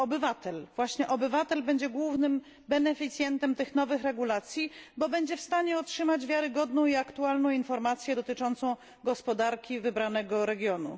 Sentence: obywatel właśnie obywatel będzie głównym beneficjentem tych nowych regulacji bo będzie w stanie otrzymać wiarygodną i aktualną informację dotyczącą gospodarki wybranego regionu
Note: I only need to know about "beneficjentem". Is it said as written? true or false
true